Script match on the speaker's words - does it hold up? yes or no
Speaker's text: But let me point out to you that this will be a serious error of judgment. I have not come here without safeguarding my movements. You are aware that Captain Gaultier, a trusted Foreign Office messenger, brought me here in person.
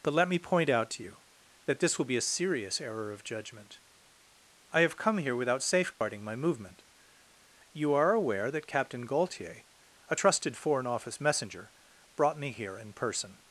no